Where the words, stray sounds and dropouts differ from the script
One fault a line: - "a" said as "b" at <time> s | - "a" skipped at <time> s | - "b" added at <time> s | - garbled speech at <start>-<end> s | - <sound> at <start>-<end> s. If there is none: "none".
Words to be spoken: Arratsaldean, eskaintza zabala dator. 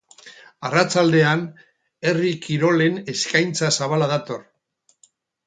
- "herri kirolen" added at 2.1 s